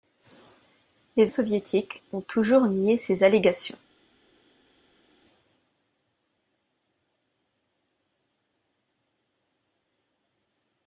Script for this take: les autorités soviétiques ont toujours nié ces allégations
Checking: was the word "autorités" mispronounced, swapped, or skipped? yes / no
yes